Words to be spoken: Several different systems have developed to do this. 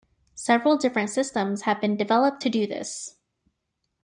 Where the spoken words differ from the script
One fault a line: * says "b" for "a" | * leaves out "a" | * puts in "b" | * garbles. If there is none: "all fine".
* puts in "been"